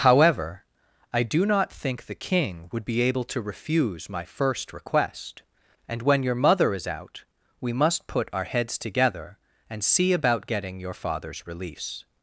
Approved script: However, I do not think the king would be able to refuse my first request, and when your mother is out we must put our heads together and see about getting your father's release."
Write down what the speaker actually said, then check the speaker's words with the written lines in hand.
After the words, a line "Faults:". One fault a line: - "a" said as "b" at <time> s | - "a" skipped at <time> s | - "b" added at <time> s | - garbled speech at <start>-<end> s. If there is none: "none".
However, I do not think the king would be able to refuse my first request, and when your mother is out we must put our heads together and see about getting your father's release."
Faults:
none